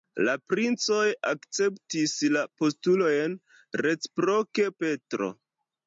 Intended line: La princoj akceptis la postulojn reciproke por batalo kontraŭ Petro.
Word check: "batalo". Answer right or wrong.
wrong